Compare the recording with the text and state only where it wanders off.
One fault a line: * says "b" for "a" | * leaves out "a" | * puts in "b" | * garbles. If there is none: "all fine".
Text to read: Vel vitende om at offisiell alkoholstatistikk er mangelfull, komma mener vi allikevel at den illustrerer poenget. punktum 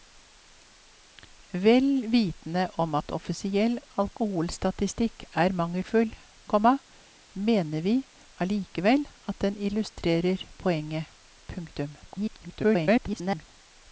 * garbles